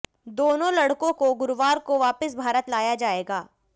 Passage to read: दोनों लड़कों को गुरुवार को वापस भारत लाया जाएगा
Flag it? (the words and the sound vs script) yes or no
no